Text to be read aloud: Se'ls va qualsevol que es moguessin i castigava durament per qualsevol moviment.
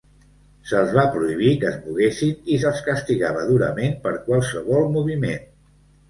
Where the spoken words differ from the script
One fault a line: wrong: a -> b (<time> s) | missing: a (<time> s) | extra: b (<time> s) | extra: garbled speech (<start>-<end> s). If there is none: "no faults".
wrong: qualsevol -> prohibir (1.2 s)
extra: se'ls (2.6 s)